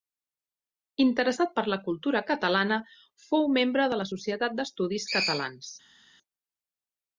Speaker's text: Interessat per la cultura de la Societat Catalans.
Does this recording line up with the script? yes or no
no